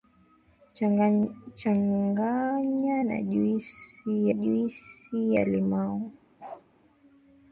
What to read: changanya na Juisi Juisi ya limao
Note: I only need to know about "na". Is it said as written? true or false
true